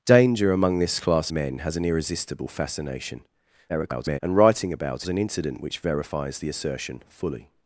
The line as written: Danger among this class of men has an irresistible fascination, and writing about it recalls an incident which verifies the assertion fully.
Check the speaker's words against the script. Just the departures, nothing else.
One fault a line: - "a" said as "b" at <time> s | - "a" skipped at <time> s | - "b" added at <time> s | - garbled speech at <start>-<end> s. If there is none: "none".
- "of" skipped at 1.3 s
- garbled speech at 3.7-4.2 s
- "it recalls" skipped at 5.0 s